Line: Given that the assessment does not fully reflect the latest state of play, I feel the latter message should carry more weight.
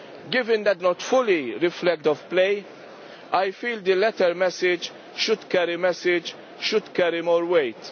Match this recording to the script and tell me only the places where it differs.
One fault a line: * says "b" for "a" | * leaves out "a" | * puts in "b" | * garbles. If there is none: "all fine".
* leaves out "the assessment does"
* leaves out "the latest state"
* puts in "message should carry"